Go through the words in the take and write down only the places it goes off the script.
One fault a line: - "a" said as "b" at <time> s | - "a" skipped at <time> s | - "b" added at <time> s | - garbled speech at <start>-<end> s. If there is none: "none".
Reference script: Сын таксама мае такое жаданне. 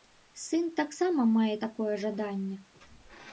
none